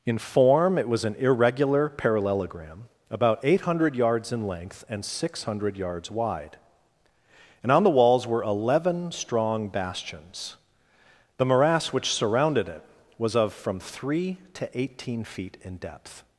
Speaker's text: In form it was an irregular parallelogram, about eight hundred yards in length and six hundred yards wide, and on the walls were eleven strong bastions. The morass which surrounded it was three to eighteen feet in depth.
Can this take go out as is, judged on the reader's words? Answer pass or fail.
fail